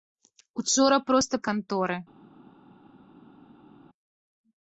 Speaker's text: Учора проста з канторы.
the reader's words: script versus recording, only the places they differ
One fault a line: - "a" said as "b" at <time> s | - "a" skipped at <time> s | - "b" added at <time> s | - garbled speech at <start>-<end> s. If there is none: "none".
none